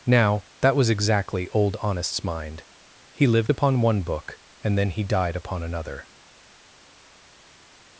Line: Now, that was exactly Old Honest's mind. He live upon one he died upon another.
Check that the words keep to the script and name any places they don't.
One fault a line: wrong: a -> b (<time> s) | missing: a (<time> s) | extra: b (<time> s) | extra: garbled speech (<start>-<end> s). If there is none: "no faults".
wrong: live -> lived (3.3 s)
extra: book and then (4.0 s)